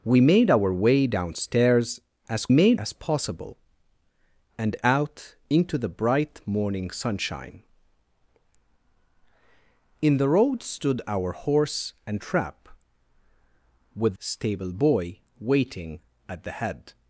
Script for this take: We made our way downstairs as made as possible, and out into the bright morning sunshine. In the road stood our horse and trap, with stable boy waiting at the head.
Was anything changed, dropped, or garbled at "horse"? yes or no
no